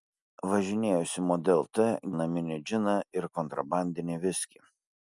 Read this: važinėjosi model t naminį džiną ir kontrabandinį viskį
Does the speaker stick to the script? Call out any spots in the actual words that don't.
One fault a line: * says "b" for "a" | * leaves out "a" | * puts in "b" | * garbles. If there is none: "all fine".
all fine